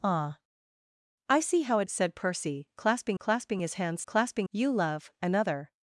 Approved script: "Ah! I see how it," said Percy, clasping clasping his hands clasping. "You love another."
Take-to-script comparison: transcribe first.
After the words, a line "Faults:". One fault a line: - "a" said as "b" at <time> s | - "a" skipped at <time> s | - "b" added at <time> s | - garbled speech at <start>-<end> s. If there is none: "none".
"Ah! I see how it," said Percy, clasping clasping his hands clasping. "You love another."
Faults:
none